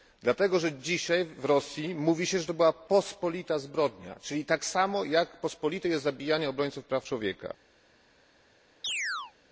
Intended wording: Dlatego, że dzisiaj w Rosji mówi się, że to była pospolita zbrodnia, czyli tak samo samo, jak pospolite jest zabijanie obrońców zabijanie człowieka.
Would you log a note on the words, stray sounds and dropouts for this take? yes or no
yes